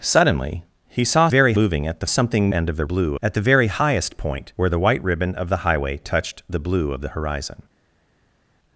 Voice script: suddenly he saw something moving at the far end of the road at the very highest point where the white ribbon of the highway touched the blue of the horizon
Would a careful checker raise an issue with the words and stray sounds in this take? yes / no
yes